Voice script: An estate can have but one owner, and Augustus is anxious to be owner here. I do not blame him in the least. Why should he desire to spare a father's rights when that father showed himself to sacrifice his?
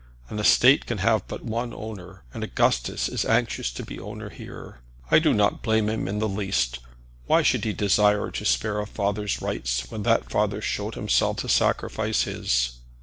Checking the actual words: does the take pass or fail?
pass